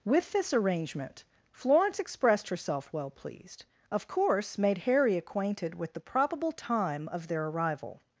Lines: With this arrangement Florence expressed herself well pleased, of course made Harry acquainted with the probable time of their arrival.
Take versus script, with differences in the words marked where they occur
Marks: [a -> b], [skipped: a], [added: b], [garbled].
With this arrangement Florence expressed herself well pleased, of course made Harry acquainted with the probable time of their arrival.